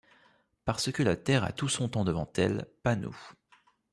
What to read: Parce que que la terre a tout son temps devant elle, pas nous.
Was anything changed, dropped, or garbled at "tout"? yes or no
no